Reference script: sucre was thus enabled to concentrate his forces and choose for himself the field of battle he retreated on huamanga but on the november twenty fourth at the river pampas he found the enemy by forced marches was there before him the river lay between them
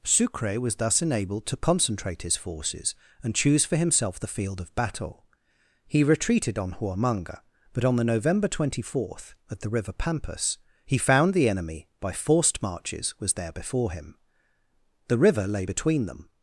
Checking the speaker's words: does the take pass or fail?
pass